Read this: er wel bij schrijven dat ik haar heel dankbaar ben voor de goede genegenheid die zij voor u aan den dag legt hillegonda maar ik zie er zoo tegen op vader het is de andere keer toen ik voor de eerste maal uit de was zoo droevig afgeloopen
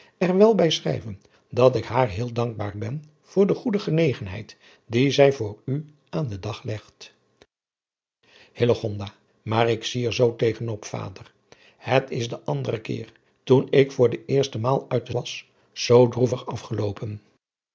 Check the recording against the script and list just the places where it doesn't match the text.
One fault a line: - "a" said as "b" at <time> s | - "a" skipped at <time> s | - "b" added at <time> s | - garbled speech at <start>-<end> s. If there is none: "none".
none